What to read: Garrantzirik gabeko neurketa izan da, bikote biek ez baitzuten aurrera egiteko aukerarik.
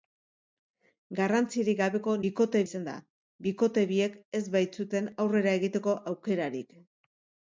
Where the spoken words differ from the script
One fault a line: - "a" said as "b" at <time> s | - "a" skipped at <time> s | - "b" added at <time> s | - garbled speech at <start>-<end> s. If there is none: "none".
- "neurketa" said as "bikote" at 2.3 s